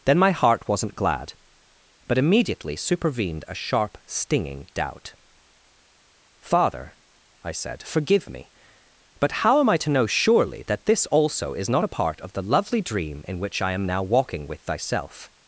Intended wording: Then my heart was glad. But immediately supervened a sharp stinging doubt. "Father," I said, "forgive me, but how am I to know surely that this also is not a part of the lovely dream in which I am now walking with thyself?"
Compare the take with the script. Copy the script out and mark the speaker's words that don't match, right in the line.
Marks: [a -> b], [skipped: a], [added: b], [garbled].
Then my heart [was -> wasn't] glad. But immediately supervened a sharp stinging doubt. "Father," I said, "forgive me, but how am I to know surely that this also is not a part of the lovely dream in which I am now walking with thyself?"